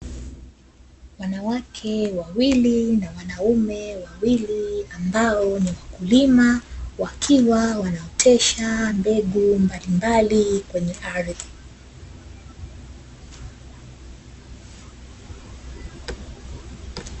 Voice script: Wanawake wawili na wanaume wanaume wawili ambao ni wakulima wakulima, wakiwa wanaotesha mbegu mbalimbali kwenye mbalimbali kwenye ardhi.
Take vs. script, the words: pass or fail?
fail